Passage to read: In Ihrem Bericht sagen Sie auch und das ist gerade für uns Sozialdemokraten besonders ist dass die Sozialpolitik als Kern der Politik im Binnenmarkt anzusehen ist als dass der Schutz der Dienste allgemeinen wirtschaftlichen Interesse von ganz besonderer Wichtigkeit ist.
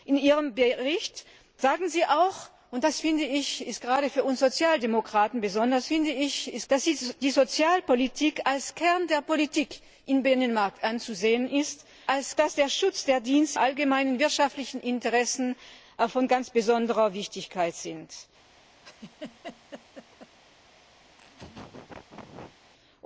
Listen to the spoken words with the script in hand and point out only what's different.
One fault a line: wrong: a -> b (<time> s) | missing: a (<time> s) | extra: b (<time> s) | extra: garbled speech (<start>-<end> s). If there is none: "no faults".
no faults